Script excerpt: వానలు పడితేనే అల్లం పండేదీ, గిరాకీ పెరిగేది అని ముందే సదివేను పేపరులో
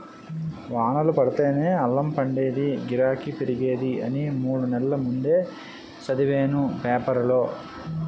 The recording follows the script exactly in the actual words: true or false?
false